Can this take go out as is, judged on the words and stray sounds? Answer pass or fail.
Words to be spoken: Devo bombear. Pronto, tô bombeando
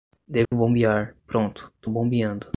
fail